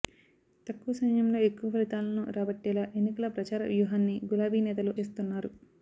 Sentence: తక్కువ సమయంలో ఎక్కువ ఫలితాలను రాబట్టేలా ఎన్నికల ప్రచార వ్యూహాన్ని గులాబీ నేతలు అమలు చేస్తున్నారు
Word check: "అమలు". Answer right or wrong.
wrong